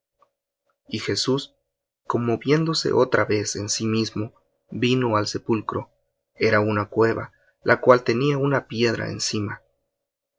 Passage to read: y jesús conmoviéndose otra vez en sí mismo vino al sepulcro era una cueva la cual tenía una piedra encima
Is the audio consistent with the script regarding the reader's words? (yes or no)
yes